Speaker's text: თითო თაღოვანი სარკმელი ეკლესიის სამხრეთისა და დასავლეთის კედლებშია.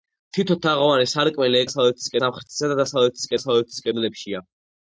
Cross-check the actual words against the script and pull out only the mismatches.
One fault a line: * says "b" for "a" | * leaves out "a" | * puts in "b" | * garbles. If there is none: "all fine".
* says "დასავლეთის" for "ეკლესიის"
* puts in "დასავლეთის"